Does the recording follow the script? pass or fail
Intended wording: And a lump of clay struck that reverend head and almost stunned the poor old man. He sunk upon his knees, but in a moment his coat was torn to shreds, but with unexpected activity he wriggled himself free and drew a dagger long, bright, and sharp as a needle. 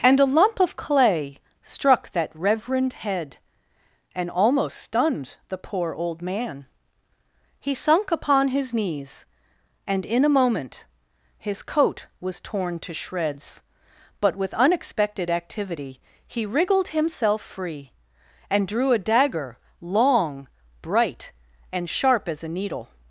fail